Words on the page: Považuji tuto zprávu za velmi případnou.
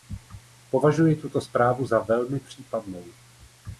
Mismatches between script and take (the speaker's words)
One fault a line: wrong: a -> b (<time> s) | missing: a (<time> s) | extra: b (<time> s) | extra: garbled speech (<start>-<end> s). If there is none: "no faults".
no faults